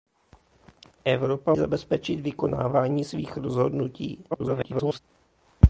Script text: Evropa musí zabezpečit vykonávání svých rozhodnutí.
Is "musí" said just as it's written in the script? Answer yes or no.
no